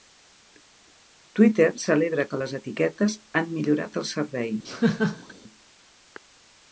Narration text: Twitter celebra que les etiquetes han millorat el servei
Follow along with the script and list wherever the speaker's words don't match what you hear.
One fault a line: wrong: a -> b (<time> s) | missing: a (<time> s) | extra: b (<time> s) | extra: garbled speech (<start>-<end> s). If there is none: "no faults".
no faults